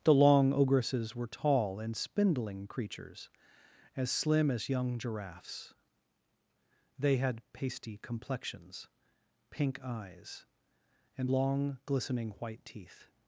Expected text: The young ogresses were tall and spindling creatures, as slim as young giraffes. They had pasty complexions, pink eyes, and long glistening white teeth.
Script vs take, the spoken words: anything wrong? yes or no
yes